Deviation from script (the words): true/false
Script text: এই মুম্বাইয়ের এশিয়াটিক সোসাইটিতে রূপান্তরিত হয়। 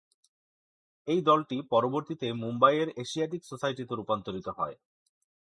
true